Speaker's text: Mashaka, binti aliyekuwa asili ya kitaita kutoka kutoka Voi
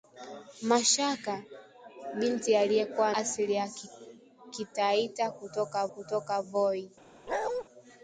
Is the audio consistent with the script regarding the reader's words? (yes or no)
yes